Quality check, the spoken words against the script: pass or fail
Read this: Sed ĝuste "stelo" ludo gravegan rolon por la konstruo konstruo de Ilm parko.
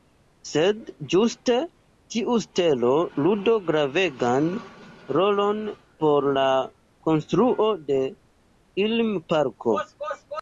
fail